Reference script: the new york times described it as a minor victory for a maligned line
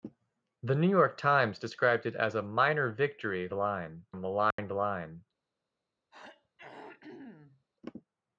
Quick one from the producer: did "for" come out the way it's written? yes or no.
no